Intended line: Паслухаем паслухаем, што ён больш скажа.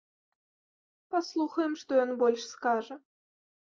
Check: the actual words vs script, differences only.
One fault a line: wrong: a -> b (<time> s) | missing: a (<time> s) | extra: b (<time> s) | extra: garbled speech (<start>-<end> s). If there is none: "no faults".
missing: паслухаем (1.7 s)